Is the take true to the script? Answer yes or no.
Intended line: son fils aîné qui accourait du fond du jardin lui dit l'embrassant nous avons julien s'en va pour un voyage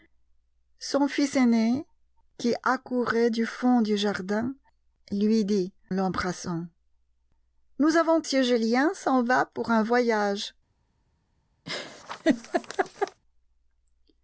yes